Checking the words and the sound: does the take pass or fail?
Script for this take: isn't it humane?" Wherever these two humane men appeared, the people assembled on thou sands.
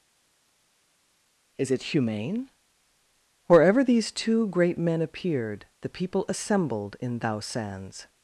fail